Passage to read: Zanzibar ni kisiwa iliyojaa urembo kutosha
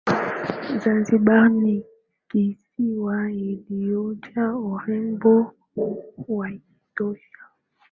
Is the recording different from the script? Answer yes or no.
yes